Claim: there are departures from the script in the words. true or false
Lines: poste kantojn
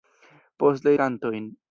false